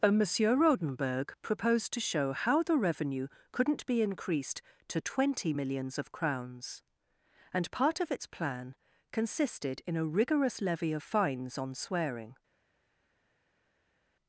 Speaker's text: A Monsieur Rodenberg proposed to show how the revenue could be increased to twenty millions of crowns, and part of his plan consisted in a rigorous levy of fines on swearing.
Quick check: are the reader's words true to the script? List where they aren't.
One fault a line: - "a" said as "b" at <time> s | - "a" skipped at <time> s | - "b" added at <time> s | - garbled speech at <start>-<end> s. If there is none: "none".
- "could" said as "couldn't" at 3.5 s
- "his" said as "its" at 8.1 s